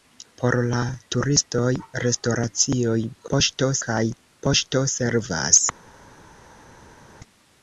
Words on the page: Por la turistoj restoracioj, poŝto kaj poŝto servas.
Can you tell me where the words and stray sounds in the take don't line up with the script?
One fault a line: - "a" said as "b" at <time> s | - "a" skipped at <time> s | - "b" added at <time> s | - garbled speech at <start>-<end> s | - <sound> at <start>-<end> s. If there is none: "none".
none